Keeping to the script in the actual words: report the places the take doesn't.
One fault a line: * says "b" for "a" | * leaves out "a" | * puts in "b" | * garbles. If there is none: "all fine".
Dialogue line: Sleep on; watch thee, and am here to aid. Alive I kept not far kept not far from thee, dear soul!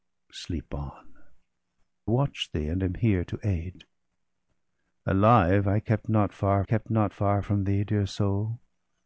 all fine